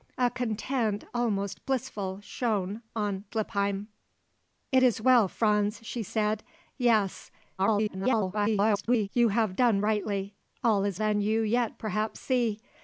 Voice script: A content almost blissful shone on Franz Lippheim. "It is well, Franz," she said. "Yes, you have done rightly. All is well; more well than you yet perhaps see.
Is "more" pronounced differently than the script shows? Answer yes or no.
yes